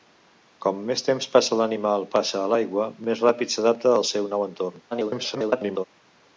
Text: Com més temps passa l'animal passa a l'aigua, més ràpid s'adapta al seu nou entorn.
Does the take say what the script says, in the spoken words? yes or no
no